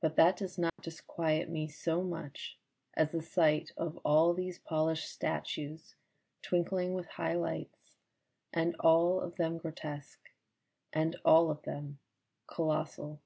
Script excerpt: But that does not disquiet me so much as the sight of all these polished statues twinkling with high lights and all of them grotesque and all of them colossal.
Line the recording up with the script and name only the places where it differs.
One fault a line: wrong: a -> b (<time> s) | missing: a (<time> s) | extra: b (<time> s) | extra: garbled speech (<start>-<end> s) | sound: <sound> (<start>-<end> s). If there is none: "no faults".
sound: dropout (0.7-0.8 s)